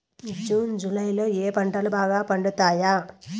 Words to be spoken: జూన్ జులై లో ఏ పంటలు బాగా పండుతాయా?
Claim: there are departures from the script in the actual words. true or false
false